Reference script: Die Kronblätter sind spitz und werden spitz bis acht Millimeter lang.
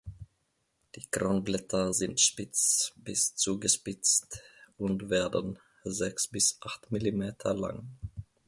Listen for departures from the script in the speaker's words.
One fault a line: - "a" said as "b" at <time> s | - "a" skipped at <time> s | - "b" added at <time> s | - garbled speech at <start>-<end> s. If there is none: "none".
- "bis zugespitzt" added at 2.9 s
- "spitz" said as "sechs" at 5.8 s